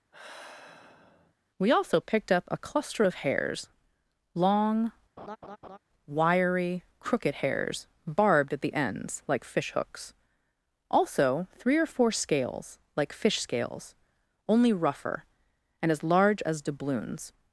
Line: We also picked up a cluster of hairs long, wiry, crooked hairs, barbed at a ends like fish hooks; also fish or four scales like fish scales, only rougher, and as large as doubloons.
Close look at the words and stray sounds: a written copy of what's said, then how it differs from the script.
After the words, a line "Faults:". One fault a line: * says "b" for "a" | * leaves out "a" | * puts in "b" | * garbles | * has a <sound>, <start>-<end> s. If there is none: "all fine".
We also picked up a cluster of hairs long, wiry, crooked hairs, barbed at the ends like fish hooks; also three or four scales like fish scales, only rougher, and as large as doubloons.
Faults:
* has a sigh, 0.1-1.3 s
* has a laugh, 5.2-5.8 s
* says "the" for "a"
* says "three" for "fish"